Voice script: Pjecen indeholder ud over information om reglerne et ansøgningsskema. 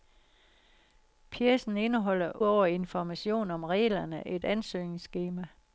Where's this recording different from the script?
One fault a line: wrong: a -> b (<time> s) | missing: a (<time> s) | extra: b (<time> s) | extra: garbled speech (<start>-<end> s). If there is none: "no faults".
missing: ud (2.4 s)